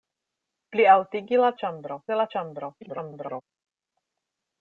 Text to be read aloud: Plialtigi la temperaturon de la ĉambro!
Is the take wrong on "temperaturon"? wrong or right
wrong